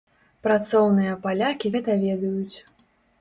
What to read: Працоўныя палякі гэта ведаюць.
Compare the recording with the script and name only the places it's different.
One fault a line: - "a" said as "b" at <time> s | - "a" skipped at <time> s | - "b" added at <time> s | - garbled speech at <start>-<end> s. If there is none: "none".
none